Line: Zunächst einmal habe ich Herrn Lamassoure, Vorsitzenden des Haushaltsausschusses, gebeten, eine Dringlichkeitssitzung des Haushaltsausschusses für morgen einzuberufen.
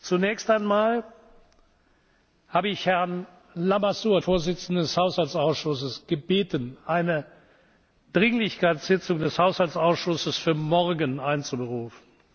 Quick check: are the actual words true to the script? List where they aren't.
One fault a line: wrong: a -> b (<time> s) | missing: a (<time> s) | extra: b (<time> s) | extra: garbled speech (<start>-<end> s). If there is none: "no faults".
no faults